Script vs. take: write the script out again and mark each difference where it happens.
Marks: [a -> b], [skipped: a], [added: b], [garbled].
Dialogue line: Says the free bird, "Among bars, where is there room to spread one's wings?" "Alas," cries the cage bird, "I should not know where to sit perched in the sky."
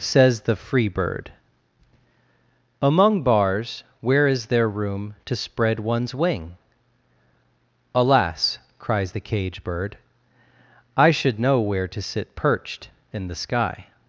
Says the free bird, "Among bars, where is there room to spread one's [wings?" -> wing] "Alas," cries the cage bird, "I should [skipped: not] know where to sit perched in the sky."